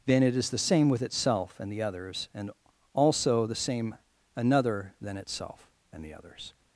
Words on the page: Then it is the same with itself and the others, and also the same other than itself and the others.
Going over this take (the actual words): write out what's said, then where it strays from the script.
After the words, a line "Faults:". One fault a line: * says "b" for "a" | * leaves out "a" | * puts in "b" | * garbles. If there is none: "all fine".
Then it is the same with itself and the others, and also the same another than itself and the others.
Faults:
* says "another" for "other"